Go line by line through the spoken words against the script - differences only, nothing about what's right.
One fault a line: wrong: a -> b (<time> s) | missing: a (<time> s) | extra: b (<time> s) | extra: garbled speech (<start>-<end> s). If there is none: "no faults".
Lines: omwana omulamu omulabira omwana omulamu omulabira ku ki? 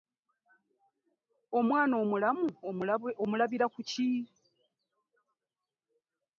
missing: omwana omulamu omulabira (3.6 s)